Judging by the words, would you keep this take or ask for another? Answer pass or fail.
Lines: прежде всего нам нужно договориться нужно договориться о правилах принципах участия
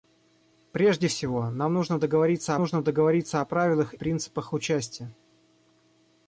pass